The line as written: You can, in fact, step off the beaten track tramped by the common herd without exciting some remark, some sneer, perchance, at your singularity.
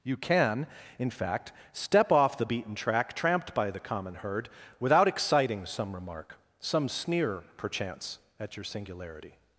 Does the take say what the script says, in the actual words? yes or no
yes